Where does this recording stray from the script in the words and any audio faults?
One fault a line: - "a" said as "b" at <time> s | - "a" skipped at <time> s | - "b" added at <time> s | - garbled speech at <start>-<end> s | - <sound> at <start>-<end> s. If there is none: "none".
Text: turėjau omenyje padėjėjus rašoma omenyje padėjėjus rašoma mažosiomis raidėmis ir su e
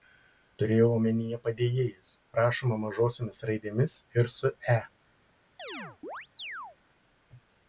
- "omenyje padėjėjus rašoma" skipped at 2.8 s
- chirp at 5.6-6.8 s